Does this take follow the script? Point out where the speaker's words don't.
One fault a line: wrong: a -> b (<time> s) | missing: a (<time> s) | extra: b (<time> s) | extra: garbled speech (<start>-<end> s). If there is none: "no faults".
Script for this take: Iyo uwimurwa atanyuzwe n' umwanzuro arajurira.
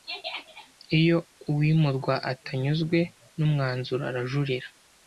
no faults